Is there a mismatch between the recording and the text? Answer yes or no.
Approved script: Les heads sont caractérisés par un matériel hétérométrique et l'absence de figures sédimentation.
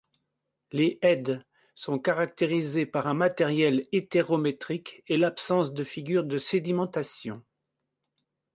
yes